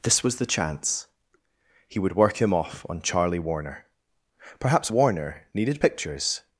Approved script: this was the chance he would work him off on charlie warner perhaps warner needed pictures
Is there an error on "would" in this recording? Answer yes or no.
no